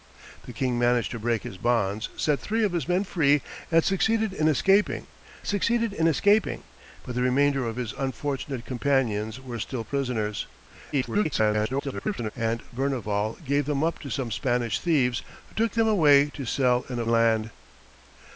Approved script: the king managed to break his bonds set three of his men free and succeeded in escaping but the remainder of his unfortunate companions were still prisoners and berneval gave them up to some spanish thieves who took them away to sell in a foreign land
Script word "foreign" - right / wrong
wrong